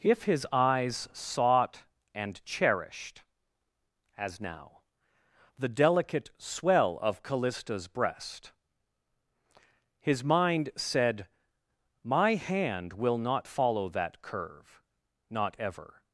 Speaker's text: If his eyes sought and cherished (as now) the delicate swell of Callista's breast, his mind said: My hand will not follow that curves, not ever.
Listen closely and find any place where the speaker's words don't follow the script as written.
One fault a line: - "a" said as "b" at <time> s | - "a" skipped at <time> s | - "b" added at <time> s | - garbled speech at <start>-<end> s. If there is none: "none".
- "curves" said as "curve" at 14.2 s